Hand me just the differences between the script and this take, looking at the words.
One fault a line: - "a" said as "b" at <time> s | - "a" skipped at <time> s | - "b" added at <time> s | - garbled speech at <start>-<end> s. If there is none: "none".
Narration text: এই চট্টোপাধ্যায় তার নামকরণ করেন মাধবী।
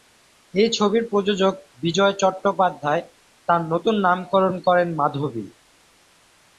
- "ছবির প্রযোজক বিজয়" added at 0.7 s
- "নতুন" added at 3.7 s